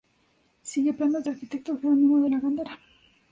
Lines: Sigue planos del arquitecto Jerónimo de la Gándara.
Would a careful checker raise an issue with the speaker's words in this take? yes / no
yes